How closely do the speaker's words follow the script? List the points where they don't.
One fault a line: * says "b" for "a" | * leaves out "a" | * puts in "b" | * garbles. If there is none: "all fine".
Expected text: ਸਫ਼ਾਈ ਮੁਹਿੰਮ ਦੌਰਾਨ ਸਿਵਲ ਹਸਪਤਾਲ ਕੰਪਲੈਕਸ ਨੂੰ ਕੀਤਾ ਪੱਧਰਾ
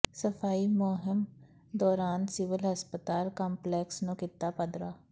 all fine